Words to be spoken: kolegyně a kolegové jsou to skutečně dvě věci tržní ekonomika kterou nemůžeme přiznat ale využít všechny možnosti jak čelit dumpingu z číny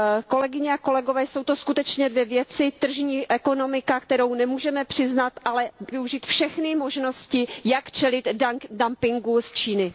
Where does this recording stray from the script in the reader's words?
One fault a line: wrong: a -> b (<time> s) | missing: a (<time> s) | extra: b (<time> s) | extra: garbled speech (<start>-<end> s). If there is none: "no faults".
no faults